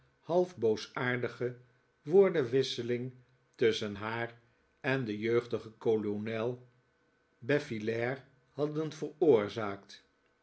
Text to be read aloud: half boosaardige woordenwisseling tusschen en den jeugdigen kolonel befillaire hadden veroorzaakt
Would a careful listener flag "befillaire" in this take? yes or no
no